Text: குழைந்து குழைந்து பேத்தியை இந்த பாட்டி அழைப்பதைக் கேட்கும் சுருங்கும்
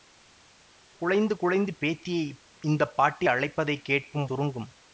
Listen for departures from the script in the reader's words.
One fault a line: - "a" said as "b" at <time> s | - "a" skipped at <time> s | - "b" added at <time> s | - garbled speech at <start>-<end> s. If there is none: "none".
none